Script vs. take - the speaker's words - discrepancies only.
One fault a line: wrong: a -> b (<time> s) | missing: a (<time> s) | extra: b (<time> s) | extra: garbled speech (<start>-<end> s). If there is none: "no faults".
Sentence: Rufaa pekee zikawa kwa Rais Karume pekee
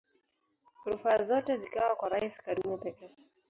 wrong: pekee -> zote (1.2 s)